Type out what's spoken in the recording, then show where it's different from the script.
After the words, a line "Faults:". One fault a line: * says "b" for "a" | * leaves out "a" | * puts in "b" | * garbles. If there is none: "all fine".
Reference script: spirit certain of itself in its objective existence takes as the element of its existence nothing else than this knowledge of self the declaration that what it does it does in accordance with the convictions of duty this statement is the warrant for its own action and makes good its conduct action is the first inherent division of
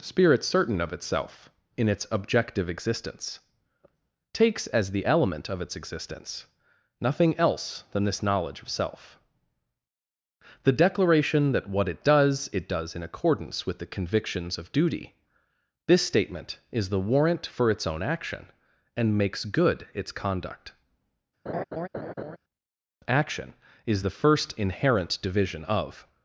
spirit certain of itself in its objective existence takes as the element of its existence nothing else than this knowledge of self the declaration that what it does it does in accordance with the convictions of duty this statement is the warrant for its own action and makes good its conduct action is the first inherent division of
Faults:
all fine